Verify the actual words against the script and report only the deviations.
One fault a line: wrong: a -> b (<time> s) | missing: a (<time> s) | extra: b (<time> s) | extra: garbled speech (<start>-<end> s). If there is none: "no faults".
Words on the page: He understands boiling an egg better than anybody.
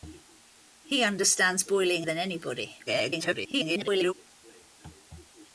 missing: an egg better (2.1 s)
extra: garbled speech (2.9-4.1 s)